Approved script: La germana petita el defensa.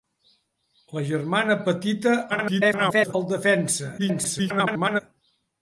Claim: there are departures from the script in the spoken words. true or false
true